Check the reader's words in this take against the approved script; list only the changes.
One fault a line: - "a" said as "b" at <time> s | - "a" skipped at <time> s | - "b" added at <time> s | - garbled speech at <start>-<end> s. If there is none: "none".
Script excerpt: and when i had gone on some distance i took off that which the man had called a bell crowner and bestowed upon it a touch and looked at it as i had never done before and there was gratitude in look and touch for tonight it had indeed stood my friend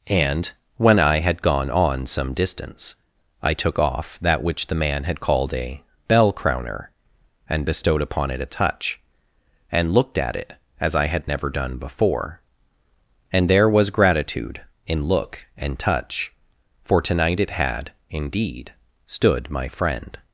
none